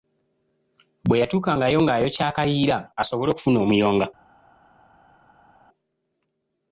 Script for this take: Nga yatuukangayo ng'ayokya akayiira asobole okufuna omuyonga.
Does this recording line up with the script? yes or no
no